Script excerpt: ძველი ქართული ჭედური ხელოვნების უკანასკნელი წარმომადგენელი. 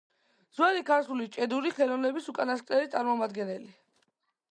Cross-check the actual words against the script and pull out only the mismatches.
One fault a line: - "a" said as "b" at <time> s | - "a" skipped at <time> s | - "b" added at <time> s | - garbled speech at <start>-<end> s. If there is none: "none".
none